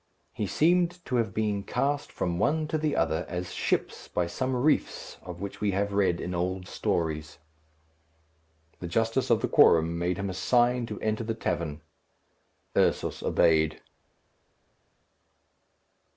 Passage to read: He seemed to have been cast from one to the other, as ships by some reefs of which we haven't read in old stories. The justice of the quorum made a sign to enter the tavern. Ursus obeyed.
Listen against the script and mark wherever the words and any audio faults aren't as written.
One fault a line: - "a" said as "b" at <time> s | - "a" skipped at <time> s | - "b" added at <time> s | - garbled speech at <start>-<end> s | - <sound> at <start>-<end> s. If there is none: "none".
- "haven't" said as "have" at 5.7 s
- "him" added at 10.2 s